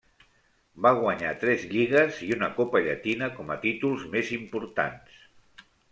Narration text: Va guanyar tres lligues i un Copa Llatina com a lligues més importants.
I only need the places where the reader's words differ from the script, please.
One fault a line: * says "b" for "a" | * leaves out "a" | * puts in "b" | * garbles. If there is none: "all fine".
* says "una" for "un"
* says "títols" for "lligues"